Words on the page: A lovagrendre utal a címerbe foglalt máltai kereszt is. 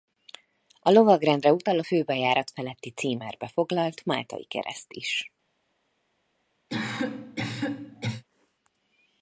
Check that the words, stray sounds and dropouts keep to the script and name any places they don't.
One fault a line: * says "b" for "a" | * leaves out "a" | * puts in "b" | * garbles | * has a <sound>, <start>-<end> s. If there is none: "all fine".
* puts in "főbejárat feletti"
* has a cough, 6.7-8.2 s